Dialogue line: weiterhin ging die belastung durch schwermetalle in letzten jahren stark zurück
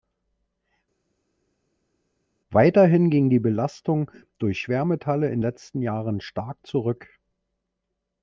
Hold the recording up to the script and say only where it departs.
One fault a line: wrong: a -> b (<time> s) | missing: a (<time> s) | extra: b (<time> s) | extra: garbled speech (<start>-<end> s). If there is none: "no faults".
no faults